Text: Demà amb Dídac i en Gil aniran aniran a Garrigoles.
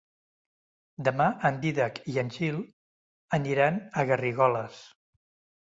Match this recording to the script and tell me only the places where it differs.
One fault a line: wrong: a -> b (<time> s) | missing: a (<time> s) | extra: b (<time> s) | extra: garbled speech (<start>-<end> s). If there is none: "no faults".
wrong: amb -> en (1.5 s)
missing: aniran (3.8 s)